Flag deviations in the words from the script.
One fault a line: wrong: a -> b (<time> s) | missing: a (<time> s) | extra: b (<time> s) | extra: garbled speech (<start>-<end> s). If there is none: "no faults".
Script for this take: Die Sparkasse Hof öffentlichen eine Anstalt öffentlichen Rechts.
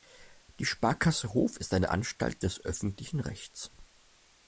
wrong: öffentlichen -> ist (1.6 s)
extra: des (2.4 s)